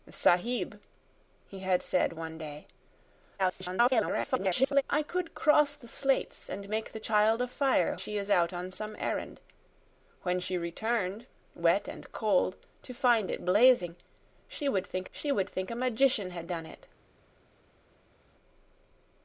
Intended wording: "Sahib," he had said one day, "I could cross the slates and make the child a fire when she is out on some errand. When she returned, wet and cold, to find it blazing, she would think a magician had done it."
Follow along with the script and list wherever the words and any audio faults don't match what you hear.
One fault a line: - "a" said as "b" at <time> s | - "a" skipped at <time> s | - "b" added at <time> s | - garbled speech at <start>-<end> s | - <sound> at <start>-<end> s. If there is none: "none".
- garbled speech at 3.4-4.8 s
- "when" skipped at 7.9 s
- "she would think" added at 15.1 s